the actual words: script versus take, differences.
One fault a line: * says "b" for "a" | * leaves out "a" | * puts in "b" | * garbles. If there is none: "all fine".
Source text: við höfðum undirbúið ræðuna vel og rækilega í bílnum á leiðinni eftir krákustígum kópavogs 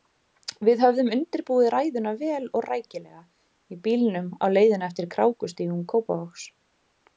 all fine